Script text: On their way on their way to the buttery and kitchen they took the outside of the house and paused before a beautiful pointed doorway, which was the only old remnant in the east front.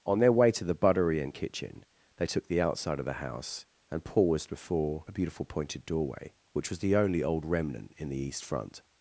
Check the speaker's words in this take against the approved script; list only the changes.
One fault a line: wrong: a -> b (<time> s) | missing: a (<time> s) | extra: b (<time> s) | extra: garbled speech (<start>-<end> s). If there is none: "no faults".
missing: on their way (0.5 s)